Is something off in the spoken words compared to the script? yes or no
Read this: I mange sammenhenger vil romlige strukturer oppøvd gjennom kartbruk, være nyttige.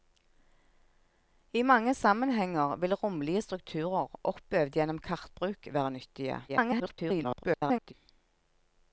yes